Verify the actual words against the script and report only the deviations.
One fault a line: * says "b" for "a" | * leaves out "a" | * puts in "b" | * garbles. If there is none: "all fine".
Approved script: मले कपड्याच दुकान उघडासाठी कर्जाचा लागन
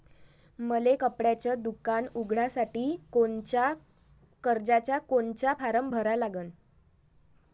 * puts in "कोनचा फारम भरा"